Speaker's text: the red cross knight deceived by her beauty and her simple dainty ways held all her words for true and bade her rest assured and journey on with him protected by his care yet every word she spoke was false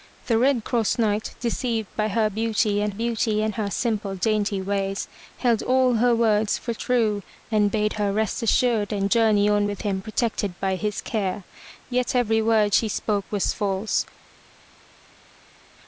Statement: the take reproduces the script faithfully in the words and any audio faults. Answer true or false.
false